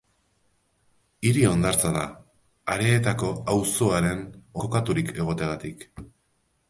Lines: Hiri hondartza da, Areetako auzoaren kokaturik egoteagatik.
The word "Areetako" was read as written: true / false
true